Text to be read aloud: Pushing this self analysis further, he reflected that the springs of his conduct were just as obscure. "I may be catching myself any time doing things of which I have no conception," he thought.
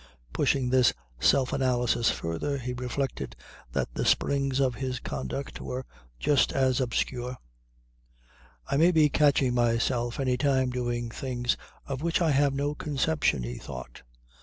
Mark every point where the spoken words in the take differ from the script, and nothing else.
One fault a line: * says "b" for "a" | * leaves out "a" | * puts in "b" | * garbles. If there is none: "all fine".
all fine